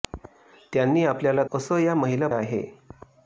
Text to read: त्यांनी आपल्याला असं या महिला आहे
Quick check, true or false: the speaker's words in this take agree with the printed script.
true